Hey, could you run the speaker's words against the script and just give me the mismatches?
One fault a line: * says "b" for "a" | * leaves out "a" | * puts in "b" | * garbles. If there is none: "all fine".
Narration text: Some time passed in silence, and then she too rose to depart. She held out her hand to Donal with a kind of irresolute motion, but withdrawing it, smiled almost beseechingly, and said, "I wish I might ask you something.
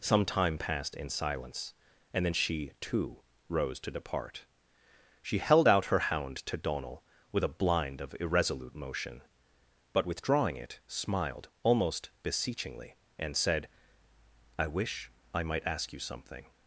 * says "hound" for "hand"
* says "blind" for "kind"